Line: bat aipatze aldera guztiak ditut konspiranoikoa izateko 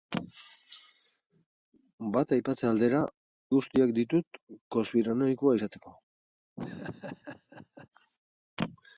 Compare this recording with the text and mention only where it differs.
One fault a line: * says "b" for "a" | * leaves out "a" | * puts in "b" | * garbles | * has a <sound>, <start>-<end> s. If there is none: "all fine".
* has a laugh, 6.6-7.9 s